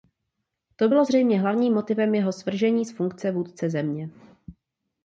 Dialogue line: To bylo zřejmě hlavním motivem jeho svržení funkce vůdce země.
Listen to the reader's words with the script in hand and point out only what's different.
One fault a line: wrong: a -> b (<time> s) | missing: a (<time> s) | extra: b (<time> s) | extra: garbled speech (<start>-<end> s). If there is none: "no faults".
extra: z (2.8 s)